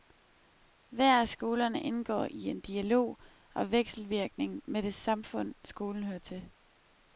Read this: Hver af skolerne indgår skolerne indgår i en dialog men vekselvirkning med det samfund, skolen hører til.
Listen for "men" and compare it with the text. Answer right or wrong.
wrong